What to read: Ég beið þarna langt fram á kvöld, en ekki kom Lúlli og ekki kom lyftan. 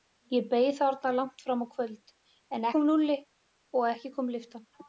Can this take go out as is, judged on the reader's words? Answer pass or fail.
fail